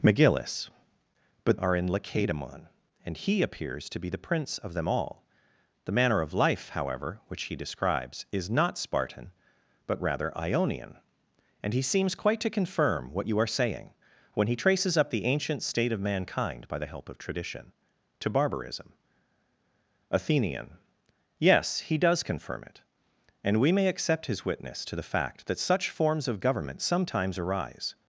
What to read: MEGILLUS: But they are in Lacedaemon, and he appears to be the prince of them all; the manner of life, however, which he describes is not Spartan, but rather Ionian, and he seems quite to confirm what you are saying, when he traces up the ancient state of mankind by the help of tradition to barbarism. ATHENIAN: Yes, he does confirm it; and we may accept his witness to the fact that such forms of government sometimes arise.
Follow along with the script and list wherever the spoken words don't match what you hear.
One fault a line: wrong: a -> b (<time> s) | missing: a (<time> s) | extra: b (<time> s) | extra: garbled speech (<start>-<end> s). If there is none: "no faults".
missing: they (1.6 s)